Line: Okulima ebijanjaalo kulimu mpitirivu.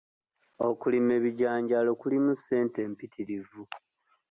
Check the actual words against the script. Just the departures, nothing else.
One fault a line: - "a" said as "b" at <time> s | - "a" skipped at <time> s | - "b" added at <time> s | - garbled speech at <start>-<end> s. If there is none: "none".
- "ssente" added at 2.4 s